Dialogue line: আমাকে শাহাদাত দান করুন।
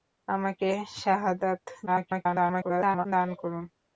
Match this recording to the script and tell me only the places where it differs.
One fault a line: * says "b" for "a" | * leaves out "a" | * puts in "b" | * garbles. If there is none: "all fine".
* garbles